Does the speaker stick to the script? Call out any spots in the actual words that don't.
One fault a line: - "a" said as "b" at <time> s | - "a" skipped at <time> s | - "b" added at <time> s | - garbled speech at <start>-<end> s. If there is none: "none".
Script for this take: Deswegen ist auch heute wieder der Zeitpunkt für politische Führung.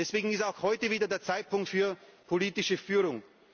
none